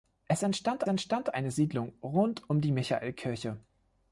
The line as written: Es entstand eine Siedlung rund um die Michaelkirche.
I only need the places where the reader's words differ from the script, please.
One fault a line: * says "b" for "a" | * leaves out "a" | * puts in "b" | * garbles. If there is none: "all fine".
* puts in "entstand"